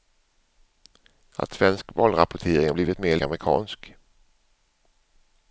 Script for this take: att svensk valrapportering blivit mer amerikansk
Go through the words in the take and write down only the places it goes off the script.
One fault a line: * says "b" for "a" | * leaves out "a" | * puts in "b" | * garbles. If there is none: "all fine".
all fine